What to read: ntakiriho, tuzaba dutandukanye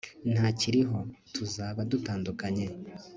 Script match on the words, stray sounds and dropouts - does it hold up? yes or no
yes